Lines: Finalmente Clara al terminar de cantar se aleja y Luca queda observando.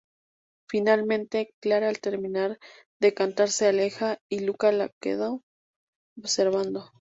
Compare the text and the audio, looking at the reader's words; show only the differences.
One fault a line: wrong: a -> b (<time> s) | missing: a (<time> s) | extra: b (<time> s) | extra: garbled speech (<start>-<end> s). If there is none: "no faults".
extra: la (4.7 s)